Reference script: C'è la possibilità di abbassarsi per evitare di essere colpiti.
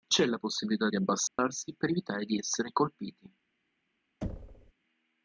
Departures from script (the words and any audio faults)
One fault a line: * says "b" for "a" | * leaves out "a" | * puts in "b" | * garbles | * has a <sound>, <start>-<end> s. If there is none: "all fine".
* has a dropout, 1.3-1.4 s
* has a thud, 4.2-4.7 s